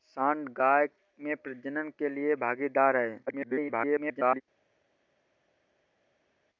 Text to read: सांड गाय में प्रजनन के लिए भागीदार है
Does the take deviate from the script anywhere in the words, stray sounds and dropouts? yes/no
yes